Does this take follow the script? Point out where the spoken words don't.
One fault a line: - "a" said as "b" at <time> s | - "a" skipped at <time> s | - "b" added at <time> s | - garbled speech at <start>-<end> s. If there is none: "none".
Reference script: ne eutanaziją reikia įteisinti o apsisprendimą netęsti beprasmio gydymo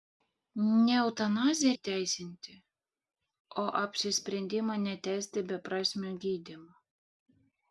- "reikia" skipped at 1.7 s